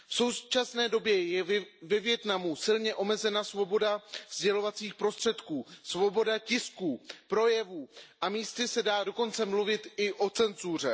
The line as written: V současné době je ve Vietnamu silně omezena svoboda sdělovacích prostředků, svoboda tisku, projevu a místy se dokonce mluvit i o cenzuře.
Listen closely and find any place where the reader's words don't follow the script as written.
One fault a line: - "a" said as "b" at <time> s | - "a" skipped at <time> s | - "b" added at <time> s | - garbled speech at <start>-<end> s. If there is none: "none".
- "dá" added at 8.8 s